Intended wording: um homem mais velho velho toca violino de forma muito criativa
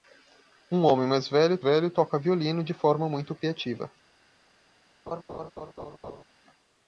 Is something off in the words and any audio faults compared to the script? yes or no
yes